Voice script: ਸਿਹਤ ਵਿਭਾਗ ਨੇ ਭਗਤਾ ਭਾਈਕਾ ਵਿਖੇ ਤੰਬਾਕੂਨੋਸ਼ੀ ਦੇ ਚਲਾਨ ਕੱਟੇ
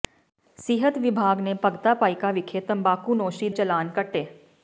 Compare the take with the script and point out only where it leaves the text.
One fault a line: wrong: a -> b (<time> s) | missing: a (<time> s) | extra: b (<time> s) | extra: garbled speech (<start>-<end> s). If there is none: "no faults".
missing: ਦੇ (3.5 s)